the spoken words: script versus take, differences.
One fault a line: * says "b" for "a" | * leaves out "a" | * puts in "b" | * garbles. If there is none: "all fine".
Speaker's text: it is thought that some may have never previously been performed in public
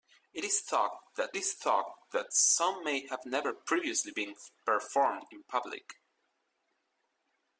* puts in "is thought that"